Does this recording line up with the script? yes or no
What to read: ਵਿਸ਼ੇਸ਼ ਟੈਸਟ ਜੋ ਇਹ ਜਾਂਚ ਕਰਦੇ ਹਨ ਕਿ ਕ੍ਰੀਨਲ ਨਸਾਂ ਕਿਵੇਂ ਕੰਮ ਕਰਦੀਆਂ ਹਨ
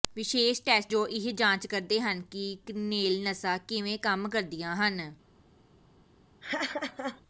yes